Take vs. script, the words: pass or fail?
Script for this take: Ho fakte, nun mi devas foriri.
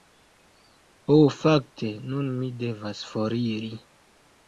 pass